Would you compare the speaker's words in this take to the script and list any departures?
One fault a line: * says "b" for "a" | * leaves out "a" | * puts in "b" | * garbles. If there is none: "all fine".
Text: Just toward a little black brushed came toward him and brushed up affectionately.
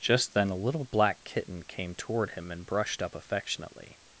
* says "then" for "toward"
* says "kitten" for "brushed"